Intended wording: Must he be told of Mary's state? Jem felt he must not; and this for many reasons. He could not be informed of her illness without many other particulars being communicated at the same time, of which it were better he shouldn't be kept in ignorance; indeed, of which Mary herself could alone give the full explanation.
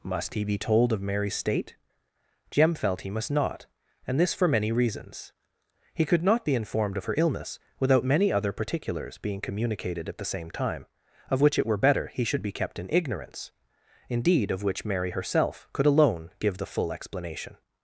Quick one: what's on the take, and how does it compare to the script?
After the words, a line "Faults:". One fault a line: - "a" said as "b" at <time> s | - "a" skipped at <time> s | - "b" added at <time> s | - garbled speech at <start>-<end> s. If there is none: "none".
Must he be told of Mary's state? Jem felt he must not; and this for many reasons. He could not be informed of her illness without many other particulars being communicated at the same time, of which it were better he should be kept in ignorance; indeed, of which Mary herself could alone give the full explanation.
Faults:
- "shouldn't" said as "should" at 12.2 s